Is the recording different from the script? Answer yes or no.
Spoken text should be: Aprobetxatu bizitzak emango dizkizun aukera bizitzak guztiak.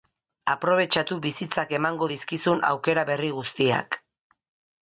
yes